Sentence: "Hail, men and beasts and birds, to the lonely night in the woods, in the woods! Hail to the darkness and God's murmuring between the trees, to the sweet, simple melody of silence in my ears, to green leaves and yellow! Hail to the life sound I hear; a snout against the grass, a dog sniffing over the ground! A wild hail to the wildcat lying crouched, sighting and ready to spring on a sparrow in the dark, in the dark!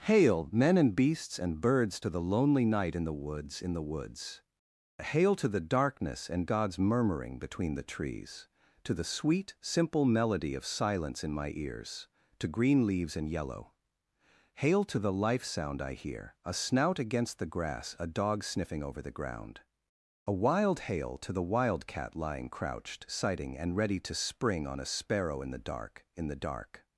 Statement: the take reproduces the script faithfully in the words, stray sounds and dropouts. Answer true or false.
true